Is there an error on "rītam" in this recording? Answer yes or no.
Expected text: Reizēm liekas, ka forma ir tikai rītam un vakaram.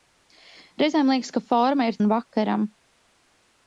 yes